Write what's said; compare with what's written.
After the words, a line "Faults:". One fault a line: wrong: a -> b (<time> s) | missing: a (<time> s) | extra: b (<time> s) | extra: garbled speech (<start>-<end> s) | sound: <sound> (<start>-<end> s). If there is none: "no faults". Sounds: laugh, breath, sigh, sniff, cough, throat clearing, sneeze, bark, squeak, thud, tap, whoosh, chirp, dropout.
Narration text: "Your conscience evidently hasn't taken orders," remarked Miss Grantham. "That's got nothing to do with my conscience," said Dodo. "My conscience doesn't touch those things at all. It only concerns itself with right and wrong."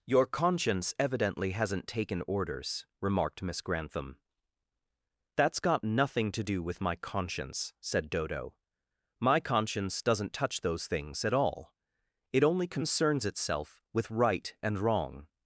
"Your conscience evidently hasn't taken orders," remarked Miss Grantham. "That's got nothing to do with my conscience," said Dodo. "My conscience doesn't touch those things at all. It only concerns itself with right and wrong."
Faults:
no faults